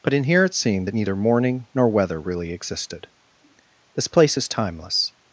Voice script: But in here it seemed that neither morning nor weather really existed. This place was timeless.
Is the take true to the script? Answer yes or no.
no